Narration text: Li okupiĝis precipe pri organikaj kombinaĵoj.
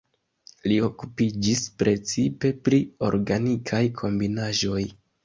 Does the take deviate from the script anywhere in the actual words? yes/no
no